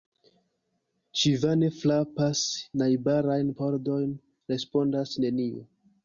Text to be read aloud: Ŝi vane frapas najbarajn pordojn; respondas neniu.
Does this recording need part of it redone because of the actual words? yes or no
no